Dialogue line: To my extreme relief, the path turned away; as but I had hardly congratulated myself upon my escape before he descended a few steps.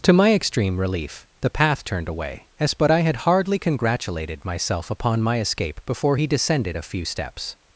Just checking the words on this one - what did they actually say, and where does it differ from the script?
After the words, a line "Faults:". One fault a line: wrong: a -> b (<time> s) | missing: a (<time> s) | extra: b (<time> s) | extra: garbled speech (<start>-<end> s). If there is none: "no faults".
To my extreme relief, the path turned away; as but I had hardly congratulated myself upon my escape before he descended a few steps.
Faults:
no faults